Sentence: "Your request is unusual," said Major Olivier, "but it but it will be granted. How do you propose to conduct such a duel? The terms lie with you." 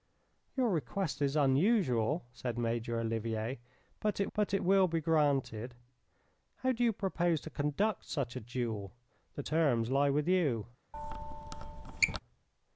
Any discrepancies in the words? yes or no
no